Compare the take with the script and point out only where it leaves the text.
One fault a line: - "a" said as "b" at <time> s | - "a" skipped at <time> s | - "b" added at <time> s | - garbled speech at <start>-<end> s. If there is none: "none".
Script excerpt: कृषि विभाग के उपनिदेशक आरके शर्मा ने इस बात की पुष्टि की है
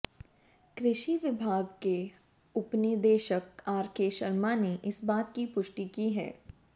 none